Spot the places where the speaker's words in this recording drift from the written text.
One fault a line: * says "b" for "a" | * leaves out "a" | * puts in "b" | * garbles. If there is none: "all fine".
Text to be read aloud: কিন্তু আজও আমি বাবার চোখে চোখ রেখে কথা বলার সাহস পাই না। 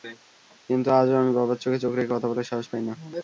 all fine